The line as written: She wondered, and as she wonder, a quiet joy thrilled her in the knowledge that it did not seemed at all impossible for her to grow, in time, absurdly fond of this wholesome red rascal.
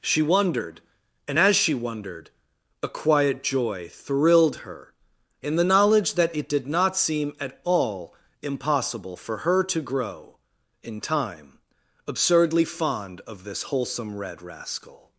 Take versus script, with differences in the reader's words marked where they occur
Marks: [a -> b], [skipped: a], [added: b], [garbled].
She wondered, and as she [wonder, -> wondered] a quiet joy thrilled her in the knowledge that it did not [seemed -> seem] at all impossible for her to grow, in time, absurdly fond of this wholesome red rascal.